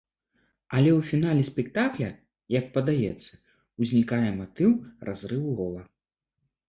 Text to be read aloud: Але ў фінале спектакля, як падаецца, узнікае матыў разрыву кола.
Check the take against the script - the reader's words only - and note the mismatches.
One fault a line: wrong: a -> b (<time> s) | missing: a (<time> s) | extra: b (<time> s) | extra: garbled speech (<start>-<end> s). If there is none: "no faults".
no faults